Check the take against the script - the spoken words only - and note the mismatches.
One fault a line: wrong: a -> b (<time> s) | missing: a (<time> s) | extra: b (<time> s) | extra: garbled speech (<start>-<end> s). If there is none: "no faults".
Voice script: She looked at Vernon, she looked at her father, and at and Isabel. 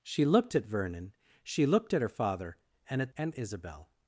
no faults